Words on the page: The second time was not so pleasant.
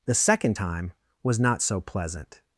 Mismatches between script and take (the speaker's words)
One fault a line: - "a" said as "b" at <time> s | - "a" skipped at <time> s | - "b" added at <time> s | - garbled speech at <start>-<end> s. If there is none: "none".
none